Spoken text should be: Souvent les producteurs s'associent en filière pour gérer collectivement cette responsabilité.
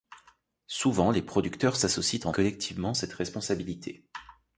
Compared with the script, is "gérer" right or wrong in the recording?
wrong